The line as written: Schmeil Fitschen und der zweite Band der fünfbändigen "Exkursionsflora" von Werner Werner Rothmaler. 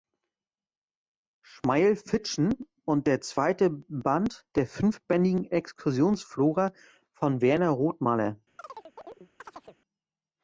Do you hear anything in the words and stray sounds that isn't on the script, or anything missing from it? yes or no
yes